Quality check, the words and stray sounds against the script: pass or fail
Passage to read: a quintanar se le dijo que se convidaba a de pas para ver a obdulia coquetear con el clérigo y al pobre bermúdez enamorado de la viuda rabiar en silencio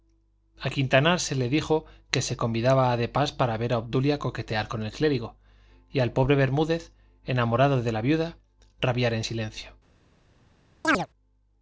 fail